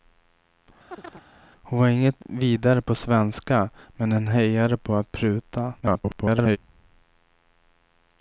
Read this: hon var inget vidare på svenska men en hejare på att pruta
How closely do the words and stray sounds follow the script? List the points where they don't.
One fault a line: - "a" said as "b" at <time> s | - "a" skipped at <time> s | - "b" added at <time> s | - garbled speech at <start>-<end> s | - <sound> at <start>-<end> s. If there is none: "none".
- chirp at 0.9-1.2 s
- garbled speech at 5.8-6.6 s